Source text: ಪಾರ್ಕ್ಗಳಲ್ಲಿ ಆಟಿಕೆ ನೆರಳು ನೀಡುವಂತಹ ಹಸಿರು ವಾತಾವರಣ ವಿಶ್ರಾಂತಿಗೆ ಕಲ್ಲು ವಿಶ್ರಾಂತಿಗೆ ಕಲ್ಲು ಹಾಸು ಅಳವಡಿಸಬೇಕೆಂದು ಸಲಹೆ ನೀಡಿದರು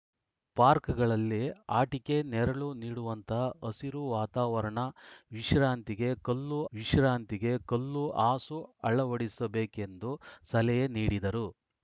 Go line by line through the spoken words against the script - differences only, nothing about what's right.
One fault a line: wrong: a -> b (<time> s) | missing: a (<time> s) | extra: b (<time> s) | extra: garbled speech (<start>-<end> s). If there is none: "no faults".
no faults